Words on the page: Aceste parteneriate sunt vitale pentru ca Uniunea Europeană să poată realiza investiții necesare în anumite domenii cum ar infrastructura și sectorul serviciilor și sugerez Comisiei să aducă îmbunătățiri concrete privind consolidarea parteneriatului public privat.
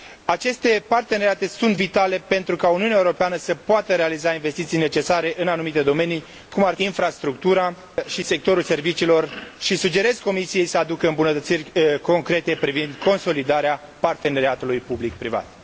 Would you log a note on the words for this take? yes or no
no